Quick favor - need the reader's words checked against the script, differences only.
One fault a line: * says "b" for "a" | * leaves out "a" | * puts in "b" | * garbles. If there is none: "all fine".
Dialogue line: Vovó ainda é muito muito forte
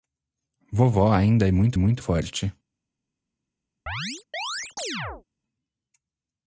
all fine